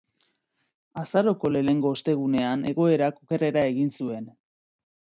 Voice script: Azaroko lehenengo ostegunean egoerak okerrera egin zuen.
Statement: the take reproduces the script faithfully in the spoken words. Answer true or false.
true